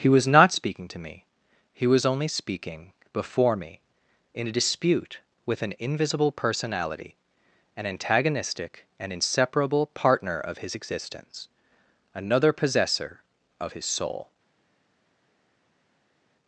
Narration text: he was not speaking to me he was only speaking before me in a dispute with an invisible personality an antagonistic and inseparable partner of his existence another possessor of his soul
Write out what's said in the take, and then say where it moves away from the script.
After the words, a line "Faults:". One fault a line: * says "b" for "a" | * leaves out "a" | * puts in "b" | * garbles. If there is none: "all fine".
he was not speaking to me he was only speaking before me in a dispute with an invisible personality an antagonistic and inseparable partner of his existence another possessor of his soul
Faults:
all fine